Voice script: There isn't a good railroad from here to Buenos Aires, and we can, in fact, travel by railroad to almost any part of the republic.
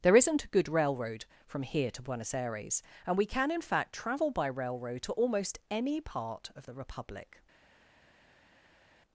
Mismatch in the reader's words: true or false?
false